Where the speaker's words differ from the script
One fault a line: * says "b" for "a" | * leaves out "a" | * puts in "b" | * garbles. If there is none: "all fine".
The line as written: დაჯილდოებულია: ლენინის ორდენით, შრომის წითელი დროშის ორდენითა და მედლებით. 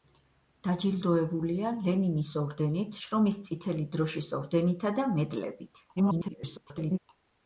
* garbles